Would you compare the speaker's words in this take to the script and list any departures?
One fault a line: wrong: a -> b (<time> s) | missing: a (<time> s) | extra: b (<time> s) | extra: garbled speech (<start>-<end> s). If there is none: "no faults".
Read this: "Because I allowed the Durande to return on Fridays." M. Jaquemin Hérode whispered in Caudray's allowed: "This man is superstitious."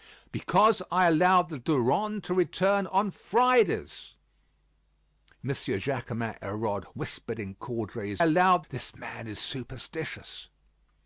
no faults